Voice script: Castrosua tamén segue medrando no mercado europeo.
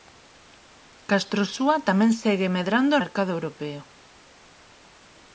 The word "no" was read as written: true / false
false